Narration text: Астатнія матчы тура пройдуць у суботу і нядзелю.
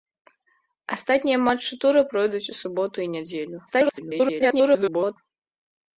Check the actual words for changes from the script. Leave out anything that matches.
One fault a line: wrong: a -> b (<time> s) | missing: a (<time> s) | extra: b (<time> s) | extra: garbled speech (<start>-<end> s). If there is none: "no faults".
extra: garbled speech (3.7-5.2 s)